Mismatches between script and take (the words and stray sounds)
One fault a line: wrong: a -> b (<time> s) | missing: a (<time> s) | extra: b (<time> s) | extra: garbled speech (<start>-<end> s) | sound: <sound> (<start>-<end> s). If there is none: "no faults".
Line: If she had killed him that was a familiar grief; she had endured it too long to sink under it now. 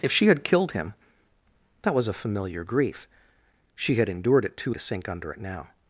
missing: long (4.7 s)